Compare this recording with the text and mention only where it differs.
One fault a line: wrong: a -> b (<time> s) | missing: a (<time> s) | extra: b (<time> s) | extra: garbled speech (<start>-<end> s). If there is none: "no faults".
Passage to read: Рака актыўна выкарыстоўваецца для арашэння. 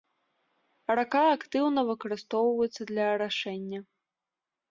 no faults